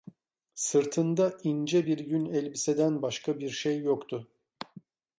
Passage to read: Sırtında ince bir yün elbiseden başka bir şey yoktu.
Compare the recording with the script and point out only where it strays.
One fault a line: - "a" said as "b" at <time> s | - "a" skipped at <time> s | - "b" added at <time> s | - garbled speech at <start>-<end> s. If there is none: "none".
none